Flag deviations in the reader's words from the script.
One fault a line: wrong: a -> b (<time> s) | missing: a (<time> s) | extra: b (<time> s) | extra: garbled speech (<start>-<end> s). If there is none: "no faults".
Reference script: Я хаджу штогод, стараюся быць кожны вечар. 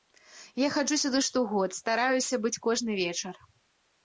extra: сюды (1.0 s)